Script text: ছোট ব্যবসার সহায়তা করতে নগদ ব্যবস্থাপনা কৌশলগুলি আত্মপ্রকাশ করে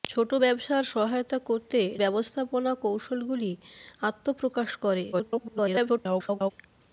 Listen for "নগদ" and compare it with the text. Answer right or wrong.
wrong